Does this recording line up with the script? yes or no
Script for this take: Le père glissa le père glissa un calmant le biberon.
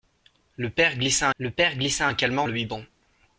yes